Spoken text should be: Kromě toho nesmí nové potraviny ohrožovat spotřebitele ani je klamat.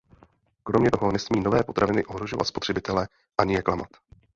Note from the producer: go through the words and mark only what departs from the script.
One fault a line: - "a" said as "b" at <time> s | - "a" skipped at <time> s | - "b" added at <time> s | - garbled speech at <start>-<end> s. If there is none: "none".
none